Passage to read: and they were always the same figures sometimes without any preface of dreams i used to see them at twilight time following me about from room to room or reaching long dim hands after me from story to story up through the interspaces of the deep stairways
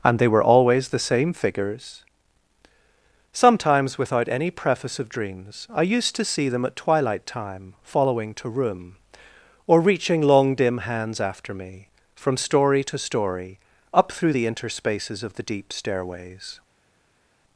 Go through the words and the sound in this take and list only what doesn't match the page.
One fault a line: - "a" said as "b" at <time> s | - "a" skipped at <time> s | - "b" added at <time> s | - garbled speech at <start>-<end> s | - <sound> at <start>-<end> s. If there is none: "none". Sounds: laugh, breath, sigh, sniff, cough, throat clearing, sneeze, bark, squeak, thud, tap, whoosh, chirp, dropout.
- "me about from room" skipped at 8.3 s